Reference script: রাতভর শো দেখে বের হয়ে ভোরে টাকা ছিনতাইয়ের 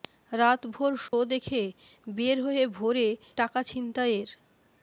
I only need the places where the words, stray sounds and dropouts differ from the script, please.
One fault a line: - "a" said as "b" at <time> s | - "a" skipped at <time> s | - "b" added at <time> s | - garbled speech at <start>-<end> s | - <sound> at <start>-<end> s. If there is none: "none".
- dropout at 1.1-1.1 s